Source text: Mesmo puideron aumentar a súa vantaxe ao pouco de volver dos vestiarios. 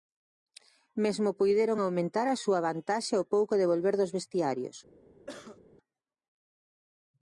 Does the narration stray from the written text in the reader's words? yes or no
no